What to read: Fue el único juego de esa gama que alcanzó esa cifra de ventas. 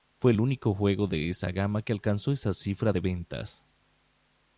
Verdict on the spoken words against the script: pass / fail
pass